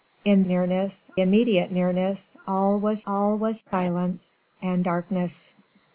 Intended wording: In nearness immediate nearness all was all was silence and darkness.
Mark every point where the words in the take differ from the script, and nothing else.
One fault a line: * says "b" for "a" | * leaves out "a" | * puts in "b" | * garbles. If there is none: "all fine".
all fine